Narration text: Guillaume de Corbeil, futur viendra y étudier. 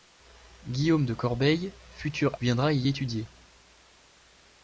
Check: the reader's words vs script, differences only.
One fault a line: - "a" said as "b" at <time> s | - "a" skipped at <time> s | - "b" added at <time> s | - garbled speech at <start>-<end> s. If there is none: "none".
none